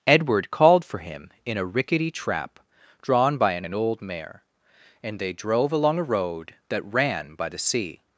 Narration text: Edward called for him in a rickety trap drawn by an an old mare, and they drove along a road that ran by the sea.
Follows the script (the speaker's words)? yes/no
yes